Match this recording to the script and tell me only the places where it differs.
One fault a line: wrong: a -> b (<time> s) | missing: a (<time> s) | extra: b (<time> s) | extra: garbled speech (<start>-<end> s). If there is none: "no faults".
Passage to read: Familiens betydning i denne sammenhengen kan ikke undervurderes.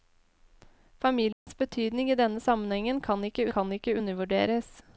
extra: kan ikke (3.5 s)